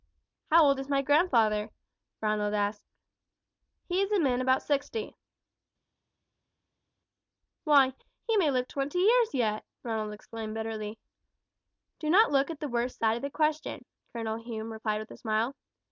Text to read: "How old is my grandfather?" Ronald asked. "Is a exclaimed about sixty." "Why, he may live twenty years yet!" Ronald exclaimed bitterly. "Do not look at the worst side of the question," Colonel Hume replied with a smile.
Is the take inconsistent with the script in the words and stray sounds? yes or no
yes